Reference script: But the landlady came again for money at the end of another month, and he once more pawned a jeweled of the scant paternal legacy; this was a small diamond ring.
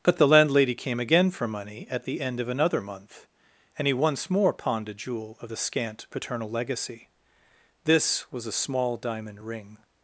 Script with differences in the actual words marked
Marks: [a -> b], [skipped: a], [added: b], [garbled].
But the landlady came again for money at the end of another month, and he once more pawned a [jeweled -> jewel] of the scant paternal legacy; this was a small diamond ring.